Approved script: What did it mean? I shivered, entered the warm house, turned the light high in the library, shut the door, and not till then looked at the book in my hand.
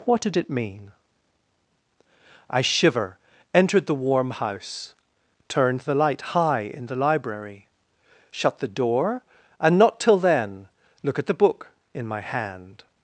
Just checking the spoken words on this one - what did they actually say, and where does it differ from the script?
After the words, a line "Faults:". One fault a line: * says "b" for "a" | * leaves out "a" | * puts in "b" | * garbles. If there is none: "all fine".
What did it mean? I shiver, entered the warm house, turned the light high in the library, shut the door, and not till then look at the book in my hand.
Faults:
* says "shiver" for "shivered"
* says "look" for "looked"